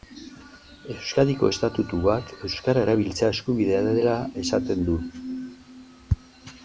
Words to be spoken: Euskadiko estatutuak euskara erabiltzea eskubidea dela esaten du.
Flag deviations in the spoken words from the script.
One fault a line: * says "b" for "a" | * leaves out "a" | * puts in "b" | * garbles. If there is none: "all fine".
all fine